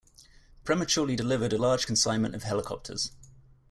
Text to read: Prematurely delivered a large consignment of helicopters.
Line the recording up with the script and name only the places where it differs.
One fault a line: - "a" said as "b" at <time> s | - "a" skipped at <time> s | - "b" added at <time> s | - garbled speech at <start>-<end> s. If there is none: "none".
none